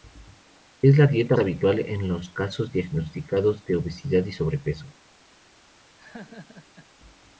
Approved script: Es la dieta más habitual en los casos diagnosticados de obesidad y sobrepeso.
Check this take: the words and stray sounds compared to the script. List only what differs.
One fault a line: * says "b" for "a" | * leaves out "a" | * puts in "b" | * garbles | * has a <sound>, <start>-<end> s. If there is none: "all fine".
* leaves out "más"
* has a laugh, 6.0-6.9 s